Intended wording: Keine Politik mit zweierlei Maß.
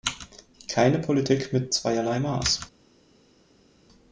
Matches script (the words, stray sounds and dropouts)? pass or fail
pass